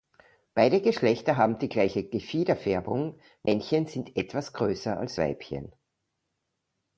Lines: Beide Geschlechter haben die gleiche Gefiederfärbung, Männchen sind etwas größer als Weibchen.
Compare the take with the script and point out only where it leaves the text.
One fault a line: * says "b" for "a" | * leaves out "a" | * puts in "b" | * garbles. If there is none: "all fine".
all fine